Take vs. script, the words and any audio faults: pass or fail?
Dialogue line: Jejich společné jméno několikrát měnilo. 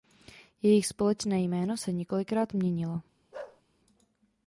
fail